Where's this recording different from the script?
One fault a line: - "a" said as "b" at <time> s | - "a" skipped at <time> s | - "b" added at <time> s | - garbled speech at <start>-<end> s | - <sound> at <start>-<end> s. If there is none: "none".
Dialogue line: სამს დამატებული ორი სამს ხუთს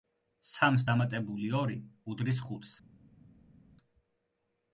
- "სამს" said as "უდრის" at 2.1 s